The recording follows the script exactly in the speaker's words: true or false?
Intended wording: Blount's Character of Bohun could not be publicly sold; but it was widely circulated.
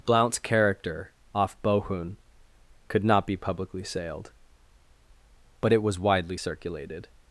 false